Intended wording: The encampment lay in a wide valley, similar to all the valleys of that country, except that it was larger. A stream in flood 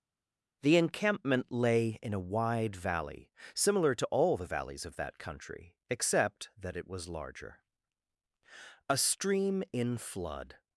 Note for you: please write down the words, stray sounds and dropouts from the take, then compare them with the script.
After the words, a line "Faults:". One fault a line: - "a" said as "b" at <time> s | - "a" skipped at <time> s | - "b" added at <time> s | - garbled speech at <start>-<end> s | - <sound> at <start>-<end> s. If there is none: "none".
The encampment lay in a wide valley, similar to all the valleys of that country, except that it was larger. A stream in flood
Faults:
none